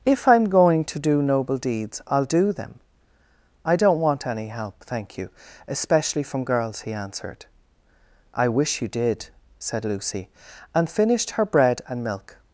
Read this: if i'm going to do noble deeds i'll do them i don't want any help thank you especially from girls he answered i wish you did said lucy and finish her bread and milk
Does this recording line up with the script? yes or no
no